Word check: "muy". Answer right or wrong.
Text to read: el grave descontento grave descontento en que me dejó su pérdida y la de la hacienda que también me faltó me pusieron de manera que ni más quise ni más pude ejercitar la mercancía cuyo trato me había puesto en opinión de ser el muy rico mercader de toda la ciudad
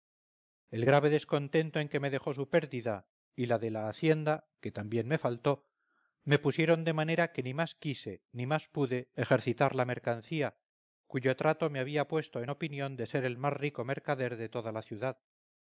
wrong